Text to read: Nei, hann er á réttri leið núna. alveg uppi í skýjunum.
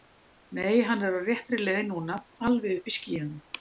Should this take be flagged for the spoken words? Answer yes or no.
no